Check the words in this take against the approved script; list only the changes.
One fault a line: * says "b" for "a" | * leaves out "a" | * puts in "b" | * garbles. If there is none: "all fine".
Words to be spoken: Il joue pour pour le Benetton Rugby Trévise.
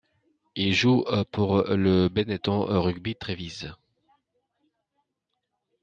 * leaves out "pour"